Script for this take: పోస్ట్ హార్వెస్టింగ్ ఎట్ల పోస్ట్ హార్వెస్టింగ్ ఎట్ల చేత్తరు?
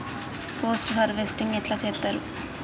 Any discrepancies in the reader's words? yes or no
yes